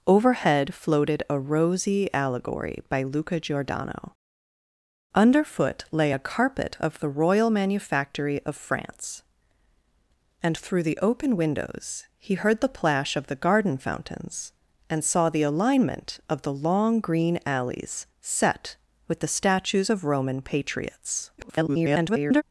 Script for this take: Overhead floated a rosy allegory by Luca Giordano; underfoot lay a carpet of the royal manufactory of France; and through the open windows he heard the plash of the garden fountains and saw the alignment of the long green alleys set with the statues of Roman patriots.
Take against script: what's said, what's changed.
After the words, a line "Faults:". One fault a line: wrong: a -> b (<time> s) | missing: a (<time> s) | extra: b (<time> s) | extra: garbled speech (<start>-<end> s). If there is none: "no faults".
Overhead floated a rosy allegory by Luca Giordano; underfoot lay a carpet of the royal manufactory of France; and through the open windows he heard the plash of the garden fountains and saw the alignment of the long green alleys set with the statues of Roman patriots. [garbled]
Faults:
extra: garbled speech (21.4-22.4 s)